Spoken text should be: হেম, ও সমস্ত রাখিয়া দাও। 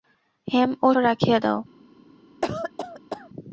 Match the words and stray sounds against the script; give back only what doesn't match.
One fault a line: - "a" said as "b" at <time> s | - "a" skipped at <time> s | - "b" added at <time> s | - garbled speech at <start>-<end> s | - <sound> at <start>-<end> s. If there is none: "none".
- "সমস্ত" skipped at 0.9 s
- cough at 2.4-3.3 s